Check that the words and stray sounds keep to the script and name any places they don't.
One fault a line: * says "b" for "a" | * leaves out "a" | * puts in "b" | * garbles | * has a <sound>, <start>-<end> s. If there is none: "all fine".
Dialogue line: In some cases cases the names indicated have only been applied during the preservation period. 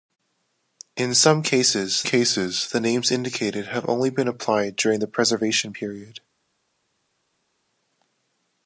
all fine